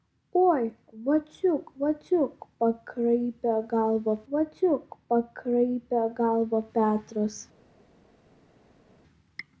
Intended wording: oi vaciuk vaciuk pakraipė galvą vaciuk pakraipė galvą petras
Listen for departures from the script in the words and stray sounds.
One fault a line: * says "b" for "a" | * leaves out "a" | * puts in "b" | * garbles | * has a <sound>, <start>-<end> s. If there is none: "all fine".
all fine